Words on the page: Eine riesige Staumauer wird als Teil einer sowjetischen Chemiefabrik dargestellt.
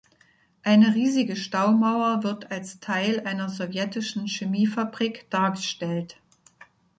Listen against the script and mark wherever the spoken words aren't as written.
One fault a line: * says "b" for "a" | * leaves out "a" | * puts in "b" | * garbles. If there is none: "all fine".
all fine